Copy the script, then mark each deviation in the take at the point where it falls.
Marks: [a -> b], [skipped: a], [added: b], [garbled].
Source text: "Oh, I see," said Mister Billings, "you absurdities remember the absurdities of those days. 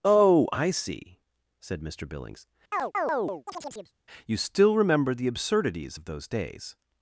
"Oh, I see," said Mister Billings, "you [absurdities -> still] remember the absurdities of those days.